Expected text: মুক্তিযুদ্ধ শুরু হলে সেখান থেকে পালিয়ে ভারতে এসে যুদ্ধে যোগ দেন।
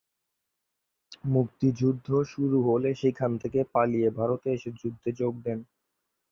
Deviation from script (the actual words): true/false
false